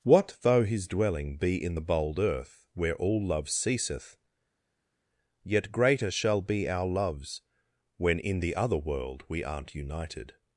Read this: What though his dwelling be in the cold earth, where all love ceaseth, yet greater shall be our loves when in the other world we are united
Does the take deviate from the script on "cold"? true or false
true